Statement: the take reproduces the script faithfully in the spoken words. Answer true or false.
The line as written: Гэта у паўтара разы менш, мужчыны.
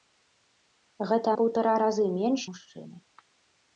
true